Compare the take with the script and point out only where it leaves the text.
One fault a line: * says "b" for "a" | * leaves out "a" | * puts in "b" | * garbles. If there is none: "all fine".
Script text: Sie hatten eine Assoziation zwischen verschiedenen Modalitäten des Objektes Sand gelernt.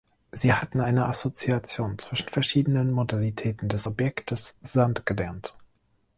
all fine